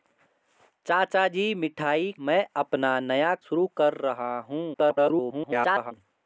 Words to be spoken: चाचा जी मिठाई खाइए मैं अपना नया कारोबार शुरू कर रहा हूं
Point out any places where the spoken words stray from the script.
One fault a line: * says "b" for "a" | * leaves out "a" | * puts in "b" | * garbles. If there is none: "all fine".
* leaves out "खाइए"
* leaves out "कारोबार"
* garbles